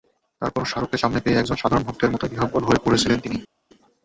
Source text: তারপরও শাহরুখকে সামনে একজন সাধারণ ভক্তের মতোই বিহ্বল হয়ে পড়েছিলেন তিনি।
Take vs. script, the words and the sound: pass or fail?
fail